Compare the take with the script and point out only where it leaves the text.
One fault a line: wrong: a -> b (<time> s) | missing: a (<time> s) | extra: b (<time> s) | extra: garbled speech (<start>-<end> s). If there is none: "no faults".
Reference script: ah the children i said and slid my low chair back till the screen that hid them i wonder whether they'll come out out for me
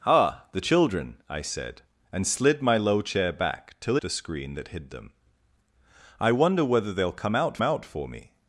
no faults